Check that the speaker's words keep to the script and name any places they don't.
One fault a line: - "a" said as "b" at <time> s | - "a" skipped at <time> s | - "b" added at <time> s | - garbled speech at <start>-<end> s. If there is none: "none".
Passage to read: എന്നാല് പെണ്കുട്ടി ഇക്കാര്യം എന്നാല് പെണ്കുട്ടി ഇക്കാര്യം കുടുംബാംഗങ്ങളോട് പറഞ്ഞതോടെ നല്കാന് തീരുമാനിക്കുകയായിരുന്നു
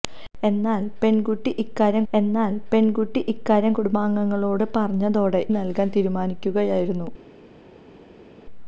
none